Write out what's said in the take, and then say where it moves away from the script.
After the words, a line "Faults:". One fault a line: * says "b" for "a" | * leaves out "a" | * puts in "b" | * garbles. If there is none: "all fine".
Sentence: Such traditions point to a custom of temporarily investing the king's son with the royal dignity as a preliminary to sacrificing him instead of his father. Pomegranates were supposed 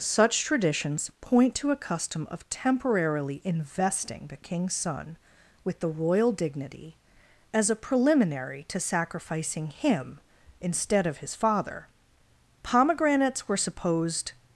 Such traditions point to a custom of temporarily investing the king's son with the royal dignity as a preliminary to sacrificing him instead of his father. Pomegranates were supposed
Faults:
all fine